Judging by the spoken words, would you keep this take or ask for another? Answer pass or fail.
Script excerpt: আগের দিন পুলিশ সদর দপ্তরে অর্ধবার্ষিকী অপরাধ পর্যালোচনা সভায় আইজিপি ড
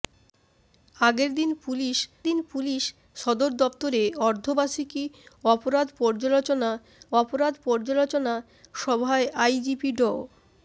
fail